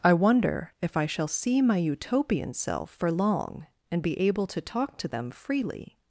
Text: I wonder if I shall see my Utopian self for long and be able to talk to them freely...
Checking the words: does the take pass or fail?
pass